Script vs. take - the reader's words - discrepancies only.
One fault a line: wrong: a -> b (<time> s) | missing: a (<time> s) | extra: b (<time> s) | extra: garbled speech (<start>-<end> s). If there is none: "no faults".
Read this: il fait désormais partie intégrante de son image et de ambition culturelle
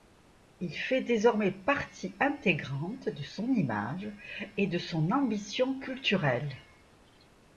extra: son (4.8 s)